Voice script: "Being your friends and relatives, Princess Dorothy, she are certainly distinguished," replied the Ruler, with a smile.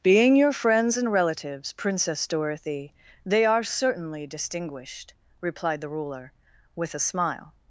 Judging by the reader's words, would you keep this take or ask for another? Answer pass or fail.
fail